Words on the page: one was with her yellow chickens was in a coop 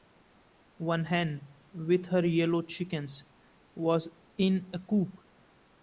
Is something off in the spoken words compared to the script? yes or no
yes